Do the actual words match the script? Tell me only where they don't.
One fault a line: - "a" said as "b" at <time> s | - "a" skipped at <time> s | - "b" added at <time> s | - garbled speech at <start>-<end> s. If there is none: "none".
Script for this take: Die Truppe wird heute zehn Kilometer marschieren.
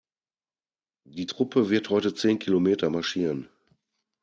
none